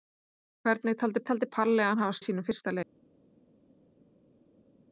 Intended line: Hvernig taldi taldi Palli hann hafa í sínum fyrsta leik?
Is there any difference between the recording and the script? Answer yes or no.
no